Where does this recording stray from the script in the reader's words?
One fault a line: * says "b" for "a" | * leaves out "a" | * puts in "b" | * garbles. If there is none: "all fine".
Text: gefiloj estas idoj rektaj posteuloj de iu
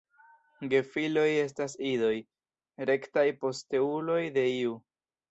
all fine